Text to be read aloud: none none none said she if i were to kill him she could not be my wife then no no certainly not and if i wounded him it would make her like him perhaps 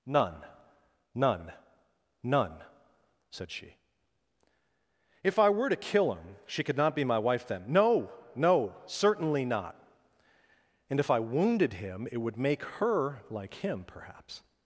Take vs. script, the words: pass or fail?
pass